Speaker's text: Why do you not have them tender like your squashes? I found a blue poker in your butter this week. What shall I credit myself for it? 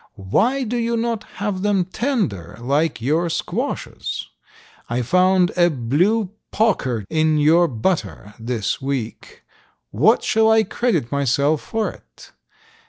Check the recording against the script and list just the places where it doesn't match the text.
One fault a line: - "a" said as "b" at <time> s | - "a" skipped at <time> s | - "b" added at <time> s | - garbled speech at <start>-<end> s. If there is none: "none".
none